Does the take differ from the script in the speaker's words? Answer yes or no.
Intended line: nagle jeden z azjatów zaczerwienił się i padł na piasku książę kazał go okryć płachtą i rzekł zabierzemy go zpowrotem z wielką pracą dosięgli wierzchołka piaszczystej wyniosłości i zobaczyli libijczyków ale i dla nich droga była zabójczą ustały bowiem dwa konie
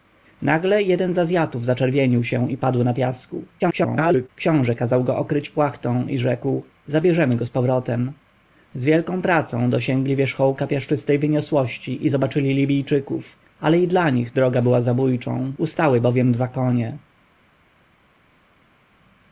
yes